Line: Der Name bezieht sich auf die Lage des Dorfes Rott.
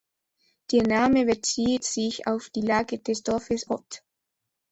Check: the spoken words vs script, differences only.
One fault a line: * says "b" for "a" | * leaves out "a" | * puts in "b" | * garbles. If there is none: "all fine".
all fine